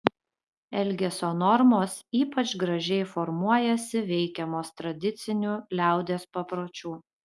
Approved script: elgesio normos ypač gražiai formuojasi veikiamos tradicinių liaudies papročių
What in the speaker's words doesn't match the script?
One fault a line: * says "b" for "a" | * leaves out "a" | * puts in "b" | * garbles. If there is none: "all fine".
all fine